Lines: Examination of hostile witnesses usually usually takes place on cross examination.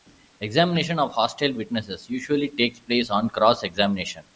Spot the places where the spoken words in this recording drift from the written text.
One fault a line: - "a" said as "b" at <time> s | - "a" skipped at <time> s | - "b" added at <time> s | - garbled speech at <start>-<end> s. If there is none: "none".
- "usually" skipped at 2.5 s